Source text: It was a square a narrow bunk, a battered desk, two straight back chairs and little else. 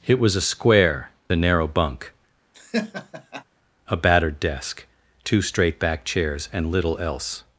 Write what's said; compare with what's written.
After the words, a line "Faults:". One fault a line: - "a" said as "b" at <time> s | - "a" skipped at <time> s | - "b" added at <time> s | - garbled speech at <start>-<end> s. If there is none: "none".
It was a square a narrow bunk, a battered desk, two straight back chairs and little else.
Faults:
none